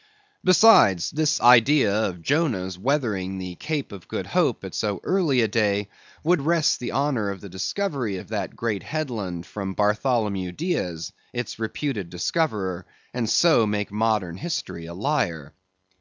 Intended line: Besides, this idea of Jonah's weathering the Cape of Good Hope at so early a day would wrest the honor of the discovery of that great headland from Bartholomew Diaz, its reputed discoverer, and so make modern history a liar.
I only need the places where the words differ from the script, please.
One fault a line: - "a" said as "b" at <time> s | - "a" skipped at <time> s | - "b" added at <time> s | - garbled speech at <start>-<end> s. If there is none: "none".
none